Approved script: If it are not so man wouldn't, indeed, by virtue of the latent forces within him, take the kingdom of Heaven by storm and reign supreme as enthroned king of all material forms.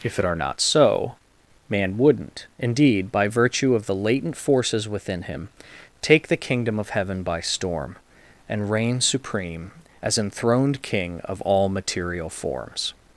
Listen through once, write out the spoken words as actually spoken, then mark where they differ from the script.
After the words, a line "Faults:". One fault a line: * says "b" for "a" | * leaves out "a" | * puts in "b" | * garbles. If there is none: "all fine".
If it are not so man wouldn't, indeed, by virtue of the latent forces within him, take the kingdom of Heaven by storm and reign supreme as enthroned king of all material forms.
Faults:
all fine